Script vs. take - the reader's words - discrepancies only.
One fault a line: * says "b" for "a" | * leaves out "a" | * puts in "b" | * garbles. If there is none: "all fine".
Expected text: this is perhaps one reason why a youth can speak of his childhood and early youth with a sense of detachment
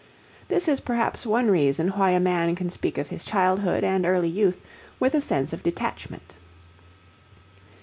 * says "man" for "youth"